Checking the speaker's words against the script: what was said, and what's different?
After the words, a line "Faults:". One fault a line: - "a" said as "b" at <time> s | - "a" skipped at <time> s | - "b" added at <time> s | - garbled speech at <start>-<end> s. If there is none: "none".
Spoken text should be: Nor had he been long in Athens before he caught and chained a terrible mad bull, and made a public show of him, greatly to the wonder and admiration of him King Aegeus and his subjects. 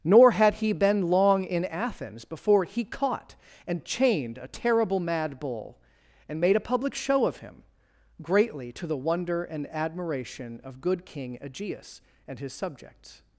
Nor had he been long in Athens before he caught and chained a terrible mad bull, and made a public show of him, greatly to the wonder and admiration of good King Aegeus and his subjects.
Faults:
- "him" said as "good" at 10.8 s